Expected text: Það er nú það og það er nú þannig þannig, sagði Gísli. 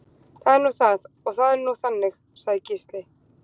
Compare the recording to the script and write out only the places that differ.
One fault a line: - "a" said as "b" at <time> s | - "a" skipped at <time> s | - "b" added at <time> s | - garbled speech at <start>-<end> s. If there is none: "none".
- "þannig" skipped at 2.2 s